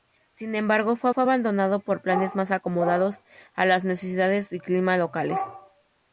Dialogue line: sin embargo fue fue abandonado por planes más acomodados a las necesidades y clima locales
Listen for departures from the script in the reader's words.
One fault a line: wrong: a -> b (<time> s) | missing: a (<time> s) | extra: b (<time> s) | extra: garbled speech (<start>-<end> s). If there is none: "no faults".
no faults